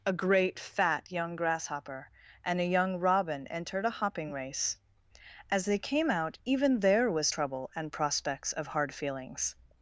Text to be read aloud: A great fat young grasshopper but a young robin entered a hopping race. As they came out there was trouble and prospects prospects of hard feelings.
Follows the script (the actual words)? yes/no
no